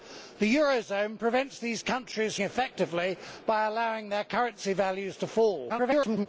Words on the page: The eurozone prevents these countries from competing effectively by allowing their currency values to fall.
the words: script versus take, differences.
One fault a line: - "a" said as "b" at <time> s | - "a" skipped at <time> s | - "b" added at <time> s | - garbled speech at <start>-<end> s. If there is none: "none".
- "from competing" skipped at 2.4 s
- garbled speech at 5.7-6.3 s